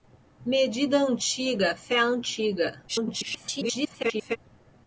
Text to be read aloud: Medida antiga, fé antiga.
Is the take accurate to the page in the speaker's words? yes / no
no